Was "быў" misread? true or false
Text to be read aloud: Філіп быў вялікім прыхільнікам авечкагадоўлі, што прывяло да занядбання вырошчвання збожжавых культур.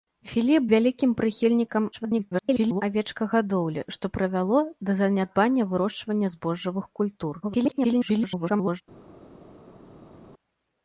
true